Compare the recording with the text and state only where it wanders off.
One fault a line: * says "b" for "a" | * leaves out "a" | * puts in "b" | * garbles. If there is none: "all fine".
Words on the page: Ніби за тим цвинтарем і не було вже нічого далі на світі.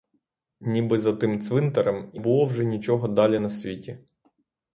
* leaves out "не"